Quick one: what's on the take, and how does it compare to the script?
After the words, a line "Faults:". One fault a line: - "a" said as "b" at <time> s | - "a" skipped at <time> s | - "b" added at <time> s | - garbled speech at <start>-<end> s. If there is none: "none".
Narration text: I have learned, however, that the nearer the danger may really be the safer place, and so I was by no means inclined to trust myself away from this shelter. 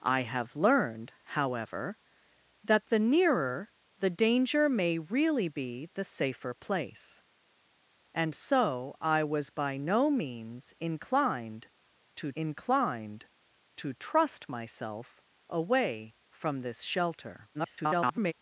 I have learned, however, that the nearer the danger may really be the safer place, and so I was by no means inclined to inclined to trust myself away from this shelter. [garbled]
Faults:
- "inclined to" added at 12.3 s
- garbled speech at 17.5-18.3 s